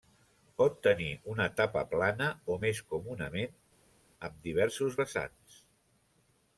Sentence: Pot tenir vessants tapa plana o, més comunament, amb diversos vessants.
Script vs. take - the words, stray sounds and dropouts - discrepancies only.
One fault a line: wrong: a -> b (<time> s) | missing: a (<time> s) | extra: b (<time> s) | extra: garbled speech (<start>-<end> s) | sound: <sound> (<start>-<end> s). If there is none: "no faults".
wrong: vessants -> una (1.3 s)